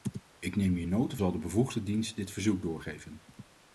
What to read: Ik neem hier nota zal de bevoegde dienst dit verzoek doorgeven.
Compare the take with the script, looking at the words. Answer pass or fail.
pass